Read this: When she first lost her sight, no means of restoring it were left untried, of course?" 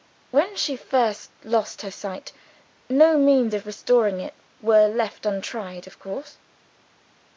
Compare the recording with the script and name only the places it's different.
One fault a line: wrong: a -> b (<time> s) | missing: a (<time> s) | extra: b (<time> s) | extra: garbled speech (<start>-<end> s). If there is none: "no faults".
no faults